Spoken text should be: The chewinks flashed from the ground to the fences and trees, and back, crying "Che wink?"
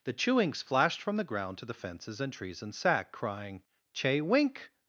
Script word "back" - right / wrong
wrong